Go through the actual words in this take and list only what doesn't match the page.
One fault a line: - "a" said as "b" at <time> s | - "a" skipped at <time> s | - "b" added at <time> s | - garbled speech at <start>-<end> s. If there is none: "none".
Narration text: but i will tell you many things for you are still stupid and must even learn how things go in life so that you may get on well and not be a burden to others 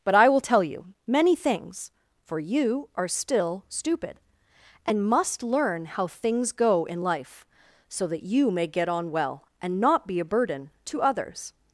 - "even" skipped at 5.4 s